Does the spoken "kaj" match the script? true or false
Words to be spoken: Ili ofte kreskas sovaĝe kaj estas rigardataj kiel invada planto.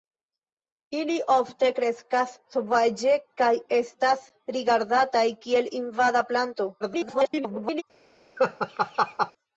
true